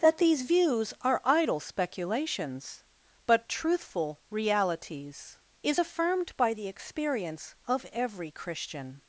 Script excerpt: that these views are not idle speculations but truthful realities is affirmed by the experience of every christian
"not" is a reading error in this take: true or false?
true